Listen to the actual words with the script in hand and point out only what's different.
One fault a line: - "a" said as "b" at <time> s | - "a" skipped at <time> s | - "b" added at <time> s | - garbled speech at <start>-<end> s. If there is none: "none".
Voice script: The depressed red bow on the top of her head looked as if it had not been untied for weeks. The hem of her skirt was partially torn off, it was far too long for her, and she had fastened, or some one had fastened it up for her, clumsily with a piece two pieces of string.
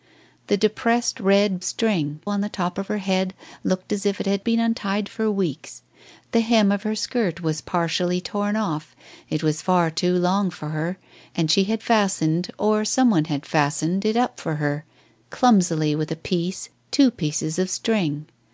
- "bow" said as "string" at 1.6 s
- "not" skipped at 4.4 s